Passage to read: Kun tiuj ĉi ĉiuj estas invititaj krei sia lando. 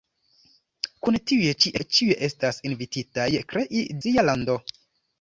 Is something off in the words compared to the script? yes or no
no